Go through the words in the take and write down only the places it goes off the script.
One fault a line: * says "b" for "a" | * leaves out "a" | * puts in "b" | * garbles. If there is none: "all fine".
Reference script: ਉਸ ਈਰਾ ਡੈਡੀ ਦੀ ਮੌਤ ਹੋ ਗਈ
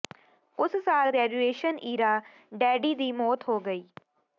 * puts in "ਸਾਲ ਗ੍ਰੈਜੂਏਸ਼ਨ"